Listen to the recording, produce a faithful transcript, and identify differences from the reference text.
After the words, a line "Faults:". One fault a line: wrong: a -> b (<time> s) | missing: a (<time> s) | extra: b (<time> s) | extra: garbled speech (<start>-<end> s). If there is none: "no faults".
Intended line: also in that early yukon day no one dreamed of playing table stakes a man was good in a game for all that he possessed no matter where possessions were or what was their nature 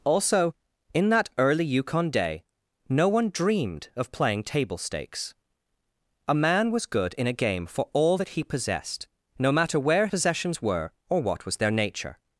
also in that early yukon day no one dreamed of playing table stakes a man was good in a game for all that he possessed no matter where possessions were or what was their nature
Faults:
no faults